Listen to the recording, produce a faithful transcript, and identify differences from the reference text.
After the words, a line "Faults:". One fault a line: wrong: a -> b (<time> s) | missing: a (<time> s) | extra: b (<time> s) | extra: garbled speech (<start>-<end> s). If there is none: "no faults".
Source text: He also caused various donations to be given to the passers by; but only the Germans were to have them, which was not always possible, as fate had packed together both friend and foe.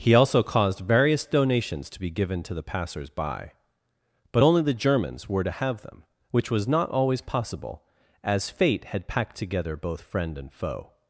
He also caused various donations to be given to the passers by; but only the Germans were to have them, which was not always possible, as fate had packed together both friend and foe.
Faults:
no faults